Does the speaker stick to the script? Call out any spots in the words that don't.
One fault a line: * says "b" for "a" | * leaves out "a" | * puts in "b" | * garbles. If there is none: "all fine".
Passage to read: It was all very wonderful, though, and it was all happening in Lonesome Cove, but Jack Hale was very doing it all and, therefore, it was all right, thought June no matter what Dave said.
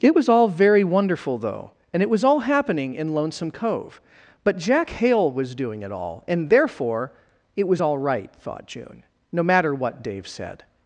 * leaves out "very"